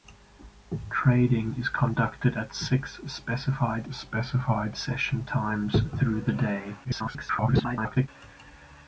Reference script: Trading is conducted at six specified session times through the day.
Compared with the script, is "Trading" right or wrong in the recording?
right